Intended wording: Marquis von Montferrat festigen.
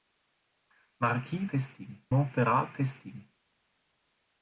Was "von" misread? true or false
true